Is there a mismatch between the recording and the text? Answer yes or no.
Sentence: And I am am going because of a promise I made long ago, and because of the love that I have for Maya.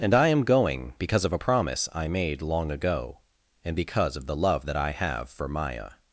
yes